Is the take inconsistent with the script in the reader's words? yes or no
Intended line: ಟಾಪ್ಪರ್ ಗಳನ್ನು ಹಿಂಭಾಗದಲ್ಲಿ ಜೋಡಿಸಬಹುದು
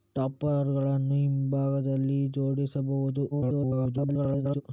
yes